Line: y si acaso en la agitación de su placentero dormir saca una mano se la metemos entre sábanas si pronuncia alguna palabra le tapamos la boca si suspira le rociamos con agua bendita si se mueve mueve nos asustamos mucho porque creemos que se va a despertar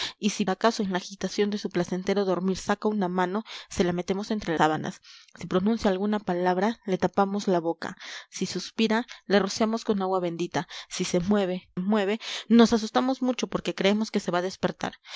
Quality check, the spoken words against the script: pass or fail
pass